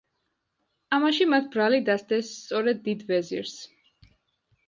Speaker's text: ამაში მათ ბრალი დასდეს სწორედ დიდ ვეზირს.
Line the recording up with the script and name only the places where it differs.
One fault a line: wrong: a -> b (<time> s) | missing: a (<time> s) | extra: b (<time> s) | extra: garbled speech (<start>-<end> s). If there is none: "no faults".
no faults